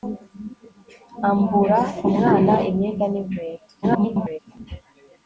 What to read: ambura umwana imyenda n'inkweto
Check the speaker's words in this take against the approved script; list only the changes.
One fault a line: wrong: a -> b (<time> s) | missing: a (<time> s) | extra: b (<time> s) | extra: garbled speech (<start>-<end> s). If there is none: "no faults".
extra: garbled speech (3.8-4.4 s)